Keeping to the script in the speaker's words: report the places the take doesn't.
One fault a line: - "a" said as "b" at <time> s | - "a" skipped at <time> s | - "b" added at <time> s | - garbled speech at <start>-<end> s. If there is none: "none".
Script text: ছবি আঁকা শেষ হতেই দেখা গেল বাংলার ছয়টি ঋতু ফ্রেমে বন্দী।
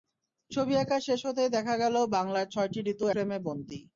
none